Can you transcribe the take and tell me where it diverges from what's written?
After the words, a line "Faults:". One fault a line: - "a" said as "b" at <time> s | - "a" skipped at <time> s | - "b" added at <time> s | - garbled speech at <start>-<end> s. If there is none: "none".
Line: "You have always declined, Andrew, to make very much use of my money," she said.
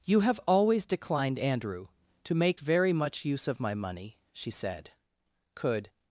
"You have always declined, Andrew, to make very much use of my money," she said. "Could
Faults:
- "Could" added at 5.5 s